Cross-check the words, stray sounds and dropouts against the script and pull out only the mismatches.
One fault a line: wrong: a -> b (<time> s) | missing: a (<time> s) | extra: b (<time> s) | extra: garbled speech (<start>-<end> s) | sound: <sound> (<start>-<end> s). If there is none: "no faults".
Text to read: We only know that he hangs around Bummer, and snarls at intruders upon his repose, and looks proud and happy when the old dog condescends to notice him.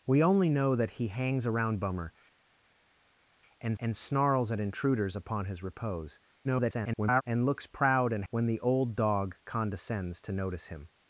extra: and (3.8 s)
extra: garbled speech (6.4-7.2 s)
missing: happy (8.2 s)